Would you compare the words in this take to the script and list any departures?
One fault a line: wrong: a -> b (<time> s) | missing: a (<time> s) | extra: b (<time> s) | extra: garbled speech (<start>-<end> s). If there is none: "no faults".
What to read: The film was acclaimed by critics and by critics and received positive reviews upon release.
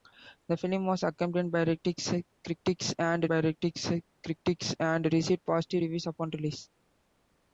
no faults